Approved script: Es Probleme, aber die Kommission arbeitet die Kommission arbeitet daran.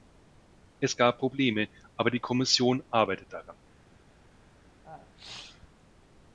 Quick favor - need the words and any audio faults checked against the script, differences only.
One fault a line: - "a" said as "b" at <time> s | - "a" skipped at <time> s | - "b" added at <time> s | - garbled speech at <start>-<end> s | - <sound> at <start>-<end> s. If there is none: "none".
- "gab" added at 1.0 s
- "die Kommission arbeitet" skipped at 3.3 s
- sneeze at 4.8-5.7 s